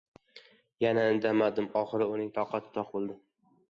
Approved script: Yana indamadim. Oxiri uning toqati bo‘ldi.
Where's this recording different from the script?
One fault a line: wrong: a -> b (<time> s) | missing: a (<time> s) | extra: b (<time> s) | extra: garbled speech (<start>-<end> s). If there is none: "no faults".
extra: toq (2.8 s)